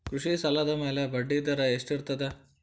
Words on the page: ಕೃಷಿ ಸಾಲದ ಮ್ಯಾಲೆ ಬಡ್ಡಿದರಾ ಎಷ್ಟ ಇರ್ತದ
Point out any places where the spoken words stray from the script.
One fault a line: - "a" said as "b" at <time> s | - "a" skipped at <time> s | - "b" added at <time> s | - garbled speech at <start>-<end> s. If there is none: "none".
none